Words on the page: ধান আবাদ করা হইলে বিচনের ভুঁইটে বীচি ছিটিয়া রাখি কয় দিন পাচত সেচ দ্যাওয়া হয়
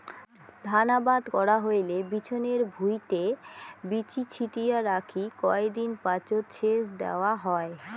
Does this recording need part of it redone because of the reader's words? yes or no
no